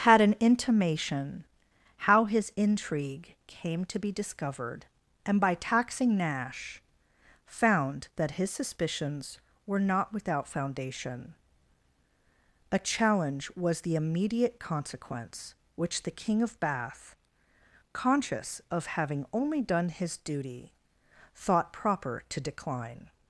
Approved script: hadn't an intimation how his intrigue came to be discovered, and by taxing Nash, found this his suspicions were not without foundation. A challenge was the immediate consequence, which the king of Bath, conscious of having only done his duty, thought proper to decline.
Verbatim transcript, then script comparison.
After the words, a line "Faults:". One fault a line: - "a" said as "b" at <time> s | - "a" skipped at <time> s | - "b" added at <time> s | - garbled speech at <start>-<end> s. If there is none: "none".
had an intimation how his intrigue came to be discovered, and by taxing Nash, found that his suspicions were not without foundation. A challenge was the immediate consequence, which the king of Bath, conscious of having only done his duty, thought proper to decline.
Faults:
- "hadn't" said as "had" at 0.0 s
- "this" said as "that" at 8.1 s